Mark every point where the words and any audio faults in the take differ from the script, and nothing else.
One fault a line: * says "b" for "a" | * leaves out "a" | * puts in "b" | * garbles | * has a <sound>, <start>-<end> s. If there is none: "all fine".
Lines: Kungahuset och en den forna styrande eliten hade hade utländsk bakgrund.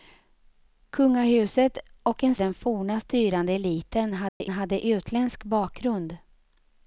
* has a dropout, 4.3-4.4 s